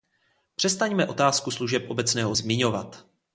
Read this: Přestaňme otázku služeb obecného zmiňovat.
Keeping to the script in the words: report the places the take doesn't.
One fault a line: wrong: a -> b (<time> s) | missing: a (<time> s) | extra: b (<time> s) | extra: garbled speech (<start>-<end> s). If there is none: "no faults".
no faults